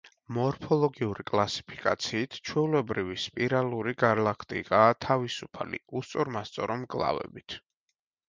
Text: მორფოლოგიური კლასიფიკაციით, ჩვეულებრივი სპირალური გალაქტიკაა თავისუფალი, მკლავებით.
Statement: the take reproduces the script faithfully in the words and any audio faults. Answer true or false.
false